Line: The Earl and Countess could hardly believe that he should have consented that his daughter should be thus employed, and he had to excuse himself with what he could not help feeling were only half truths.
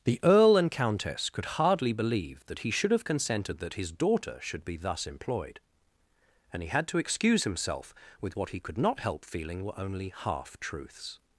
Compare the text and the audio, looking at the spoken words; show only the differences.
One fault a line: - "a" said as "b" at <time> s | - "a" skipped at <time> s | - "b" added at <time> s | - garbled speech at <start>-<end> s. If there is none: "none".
none